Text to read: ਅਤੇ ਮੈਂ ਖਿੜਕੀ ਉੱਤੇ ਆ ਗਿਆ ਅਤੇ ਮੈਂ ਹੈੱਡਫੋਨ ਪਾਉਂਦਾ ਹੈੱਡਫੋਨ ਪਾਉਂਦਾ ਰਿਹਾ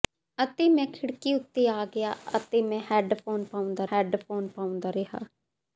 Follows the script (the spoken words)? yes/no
yes